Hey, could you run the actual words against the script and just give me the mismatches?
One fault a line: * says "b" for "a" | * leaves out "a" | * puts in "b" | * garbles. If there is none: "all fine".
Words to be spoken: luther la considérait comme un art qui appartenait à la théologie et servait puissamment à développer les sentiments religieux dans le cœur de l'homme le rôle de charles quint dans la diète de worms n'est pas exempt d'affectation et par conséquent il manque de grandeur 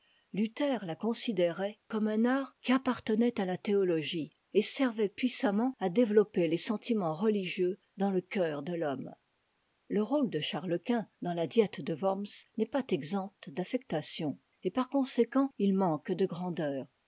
all fine